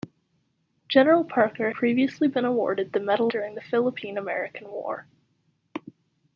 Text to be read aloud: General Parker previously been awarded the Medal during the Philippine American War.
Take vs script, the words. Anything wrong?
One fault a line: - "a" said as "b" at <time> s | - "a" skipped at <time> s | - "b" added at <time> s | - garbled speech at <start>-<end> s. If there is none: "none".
none